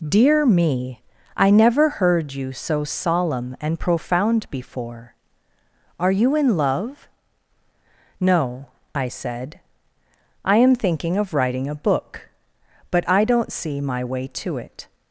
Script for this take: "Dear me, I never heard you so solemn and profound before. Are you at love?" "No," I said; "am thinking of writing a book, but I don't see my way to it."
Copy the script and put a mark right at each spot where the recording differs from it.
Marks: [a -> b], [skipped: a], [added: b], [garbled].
"Dear me, I never heard you so solemn and profound before. Are you [at -> in] love?" "No," I said; [added: I] "am thinking of writing a book, but I don't see my way to it."